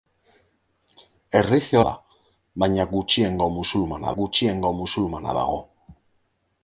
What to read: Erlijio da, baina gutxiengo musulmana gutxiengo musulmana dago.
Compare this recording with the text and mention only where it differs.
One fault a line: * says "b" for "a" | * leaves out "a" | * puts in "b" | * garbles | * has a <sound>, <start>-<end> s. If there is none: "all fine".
all fine